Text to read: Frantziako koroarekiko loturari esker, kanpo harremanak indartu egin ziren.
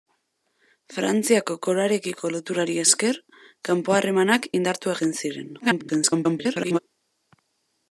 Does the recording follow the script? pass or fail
fail